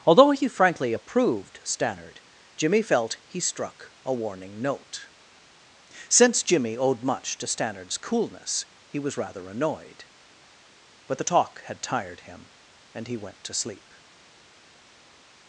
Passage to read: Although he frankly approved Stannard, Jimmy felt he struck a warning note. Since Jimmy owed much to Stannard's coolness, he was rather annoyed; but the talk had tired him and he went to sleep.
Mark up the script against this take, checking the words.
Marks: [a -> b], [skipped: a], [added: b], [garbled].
Although he frankly approved Stannard, Jimmy felt he struck a warning note. Since Jimmy owed much to Stannard's coolness, he was rather annoyed; but the talk had tired him and he went to sleep.